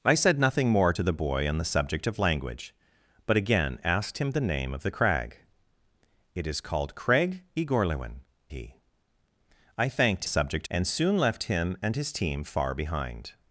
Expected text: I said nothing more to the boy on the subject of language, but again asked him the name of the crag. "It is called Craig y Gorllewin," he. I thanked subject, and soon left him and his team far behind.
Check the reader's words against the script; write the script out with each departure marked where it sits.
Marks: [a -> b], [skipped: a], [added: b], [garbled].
I said nothing more to the boy on the subject of language, but again asked him the name of the crag. "It is called Craig y Gorllewin," he. I thanked subject, and soon left him and his team far behind.